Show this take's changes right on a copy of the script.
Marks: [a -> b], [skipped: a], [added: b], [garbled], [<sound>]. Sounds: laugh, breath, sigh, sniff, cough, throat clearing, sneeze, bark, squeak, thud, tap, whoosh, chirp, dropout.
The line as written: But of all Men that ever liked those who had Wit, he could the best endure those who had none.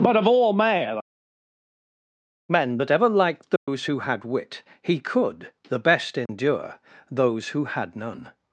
But of all Men [added: men] that ever liked those [dropout] who had Wit, he could the best endure [dropout] those who had none.